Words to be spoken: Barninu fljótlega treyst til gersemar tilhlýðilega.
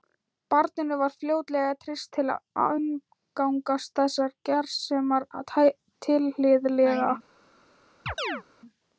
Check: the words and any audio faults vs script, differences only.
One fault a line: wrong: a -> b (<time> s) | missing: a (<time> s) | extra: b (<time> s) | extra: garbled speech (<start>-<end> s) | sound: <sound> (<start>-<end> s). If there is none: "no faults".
extra: var (1.0 s)
extra: að umgangast þessar (2.4 s)
sound: chirp (8.1-8.4 s)